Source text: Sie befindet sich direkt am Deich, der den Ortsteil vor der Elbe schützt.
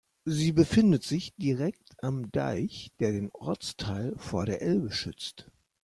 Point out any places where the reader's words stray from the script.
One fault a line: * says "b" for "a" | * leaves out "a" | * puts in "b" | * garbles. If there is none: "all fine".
all fine